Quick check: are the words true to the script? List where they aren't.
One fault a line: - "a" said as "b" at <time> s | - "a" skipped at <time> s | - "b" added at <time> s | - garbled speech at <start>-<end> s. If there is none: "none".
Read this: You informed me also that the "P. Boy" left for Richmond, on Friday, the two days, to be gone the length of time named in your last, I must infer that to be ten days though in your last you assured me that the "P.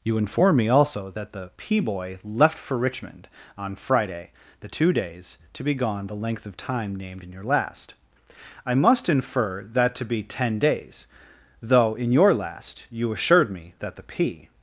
- "informed" said as "inform" at 0.2 s